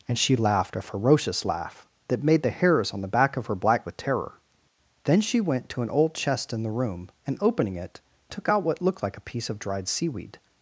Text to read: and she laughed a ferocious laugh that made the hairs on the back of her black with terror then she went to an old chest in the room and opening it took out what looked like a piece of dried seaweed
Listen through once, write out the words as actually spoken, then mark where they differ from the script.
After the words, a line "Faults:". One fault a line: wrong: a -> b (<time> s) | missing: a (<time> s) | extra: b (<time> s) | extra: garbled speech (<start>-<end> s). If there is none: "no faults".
and she laughed a ferocious laugh that made the hairs on the back of her black with terror then she went to an old chest in the room and opening it took out what looked like a piece of dried seaweed
Faults:
no faults